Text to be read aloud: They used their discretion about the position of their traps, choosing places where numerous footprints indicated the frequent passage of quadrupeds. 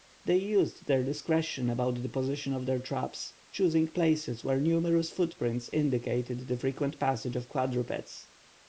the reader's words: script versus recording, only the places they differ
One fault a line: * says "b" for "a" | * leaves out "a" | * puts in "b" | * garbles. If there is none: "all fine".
all fine